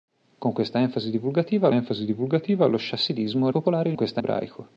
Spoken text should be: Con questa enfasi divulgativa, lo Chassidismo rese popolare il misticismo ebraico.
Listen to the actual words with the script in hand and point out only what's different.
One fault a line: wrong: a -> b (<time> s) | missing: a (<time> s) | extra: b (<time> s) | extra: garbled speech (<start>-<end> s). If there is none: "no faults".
extra: enfasi divulgativa (1.7 s)
missing: rese (3.5 s)
wrong: misticismo -> questa (3.9 s)